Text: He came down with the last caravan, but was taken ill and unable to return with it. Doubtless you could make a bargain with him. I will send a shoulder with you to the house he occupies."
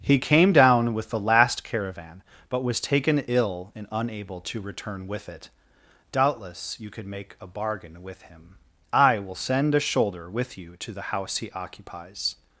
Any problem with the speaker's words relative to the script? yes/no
no